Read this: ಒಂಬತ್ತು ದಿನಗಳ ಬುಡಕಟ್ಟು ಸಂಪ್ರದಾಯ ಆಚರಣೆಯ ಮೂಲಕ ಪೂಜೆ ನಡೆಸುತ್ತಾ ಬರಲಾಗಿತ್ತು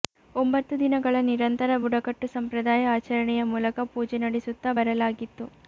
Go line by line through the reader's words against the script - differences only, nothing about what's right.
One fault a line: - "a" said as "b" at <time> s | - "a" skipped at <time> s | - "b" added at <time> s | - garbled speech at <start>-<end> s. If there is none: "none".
- "ನಿರಂತರ" added at 1.3 s